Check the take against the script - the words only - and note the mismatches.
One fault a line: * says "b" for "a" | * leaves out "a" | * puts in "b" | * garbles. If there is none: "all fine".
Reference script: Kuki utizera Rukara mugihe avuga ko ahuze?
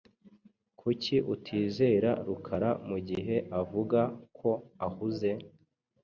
all fine